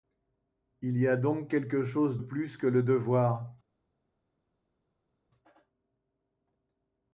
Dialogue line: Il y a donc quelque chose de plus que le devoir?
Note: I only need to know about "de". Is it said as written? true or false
false